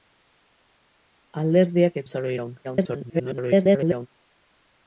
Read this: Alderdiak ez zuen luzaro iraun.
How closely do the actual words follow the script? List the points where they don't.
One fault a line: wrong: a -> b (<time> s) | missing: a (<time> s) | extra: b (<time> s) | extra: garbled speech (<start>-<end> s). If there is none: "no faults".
missing: zuen (2.0 s)
extra: garbled speech (2.6-4.1 s)